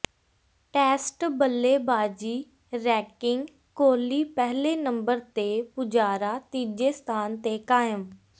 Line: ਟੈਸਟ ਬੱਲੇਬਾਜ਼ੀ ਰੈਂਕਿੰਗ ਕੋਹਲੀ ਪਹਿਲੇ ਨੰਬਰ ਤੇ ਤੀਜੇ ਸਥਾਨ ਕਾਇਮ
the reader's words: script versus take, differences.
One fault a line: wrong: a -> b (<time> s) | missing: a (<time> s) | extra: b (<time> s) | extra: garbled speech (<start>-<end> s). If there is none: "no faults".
extra: ਪੁਜਾਰਾ (5.8 s)
extra: ਤੇ (7.4 s)